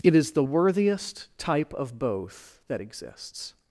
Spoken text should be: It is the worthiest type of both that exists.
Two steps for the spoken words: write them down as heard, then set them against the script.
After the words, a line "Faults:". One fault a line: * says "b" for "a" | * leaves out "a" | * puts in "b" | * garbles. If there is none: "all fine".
It is the worthiest type of both that exists.
Faults:
all fine